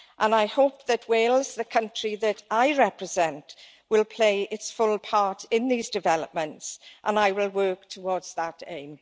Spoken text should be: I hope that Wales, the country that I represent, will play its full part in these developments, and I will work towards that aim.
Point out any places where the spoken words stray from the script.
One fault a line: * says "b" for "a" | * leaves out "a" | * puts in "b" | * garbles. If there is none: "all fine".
all fine